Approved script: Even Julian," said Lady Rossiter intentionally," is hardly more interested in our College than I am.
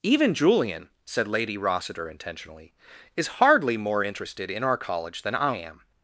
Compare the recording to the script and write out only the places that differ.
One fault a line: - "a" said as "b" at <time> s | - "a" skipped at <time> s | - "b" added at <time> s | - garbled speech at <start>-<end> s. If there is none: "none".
none